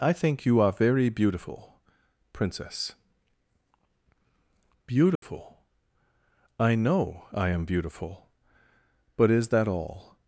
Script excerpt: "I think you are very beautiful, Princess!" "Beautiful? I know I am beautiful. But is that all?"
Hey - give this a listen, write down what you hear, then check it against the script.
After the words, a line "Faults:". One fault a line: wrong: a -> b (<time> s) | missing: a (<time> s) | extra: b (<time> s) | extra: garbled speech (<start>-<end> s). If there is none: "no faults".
"I think you are very beautiful, Princess!" "Beautiful? I know I am beautiful. But is that all?"
Faults:
no faults